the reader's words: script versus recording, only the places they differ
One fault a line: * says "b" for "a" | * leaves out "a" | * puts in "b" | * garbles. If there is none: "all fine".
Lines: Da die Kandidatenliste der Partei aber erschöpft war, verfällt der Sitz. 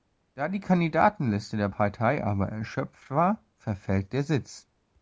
all fine